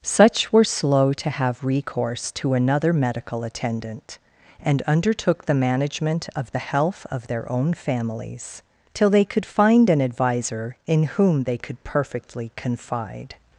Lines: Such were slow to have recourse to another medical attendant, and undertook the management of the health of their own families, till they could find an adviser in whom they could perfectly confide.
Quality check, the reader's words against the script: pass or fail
pass